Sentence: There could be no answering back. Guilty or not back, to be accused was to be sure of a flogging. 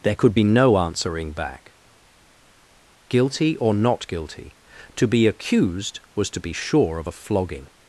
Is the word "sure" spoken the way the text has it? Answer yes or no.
yes